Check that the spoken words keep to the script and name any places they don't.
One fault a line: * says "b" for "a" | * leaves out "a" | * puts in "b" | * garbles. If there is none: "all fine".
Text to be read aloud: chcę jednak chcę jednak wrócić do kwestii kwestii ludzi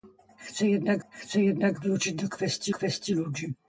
all fine